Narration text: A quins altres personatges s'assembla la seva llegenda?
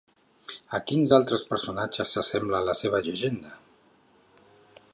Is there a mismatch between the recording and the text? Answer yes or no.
no